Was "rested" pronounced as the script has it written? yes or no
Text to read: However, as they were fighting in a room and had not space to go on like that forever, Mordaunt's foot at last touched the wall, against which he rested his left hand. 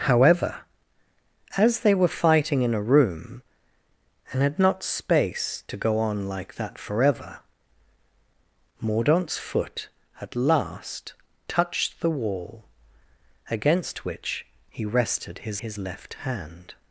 yes